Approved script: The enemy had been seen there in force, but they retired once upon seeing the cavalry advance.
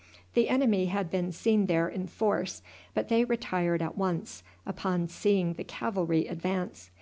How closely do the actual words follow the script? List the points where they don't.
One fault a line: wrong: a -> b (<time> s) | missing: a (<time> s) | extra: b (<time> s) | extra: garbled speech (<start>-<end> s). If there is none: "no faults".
extra: at (3.8 s)